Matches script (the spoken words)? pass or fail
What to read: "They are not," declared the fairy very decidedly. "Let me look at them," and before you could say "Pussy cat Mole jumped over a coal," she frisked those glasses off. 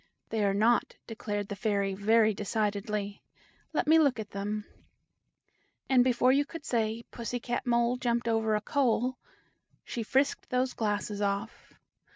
pass